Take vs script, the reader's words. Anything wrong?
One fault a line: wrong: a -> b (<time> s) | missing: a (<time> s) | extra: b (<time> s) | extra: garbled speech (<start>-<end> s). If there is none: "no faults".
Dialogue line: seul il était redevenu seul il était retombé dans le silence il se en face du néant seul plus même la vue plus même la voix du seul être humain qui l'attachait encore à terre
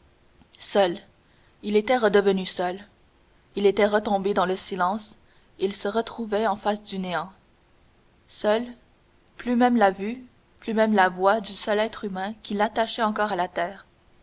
extra: retrouvait (5.9 s)
extra: la (13.4 s)